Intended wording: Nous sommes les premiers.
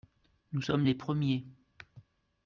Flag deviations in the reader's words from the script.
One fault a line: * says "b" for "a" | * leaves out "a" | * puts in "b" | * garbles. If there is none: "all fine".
all fine